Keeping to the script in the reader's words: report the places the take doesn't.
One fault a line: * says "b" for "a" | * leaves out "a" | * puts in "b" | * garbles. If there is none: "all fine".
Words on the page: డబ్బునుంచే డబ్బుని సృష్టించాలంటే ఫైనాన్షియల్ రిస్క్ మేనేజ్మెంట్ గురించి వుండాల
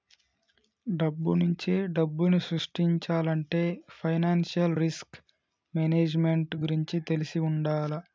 * puts in "తెలిసి"